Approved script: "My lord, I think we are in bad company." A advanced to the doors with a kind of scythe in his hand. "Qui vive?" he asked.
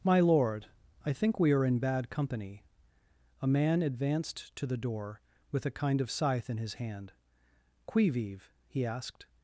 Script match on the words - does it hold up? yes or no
no